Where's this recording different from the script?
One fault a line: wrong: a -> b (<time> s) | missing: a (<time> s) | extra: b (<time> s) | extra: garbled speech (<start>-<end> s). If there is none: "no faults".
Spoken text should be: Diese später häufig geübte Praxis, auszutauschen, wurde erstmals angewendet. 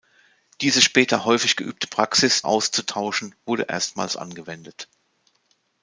no faults